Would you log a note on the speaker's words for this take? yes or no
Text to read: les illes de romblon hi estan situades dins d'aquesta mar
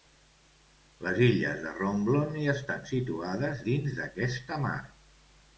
no